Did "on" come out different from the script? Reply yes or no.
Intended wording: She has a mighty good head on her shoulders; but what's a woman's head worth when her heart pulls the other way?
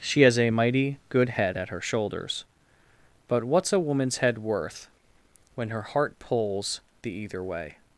yes